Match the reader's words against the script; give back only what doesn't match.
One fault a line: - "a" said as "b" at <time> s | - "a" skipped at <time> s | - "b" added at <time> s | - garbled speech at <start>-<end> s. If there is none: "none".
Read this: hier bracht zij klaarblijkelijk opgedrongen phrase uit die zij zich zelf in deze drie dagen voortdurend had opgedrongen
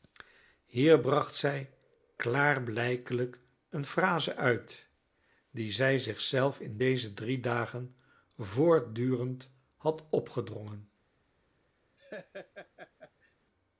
- "opgedrongen" said as "een" at 3.7 s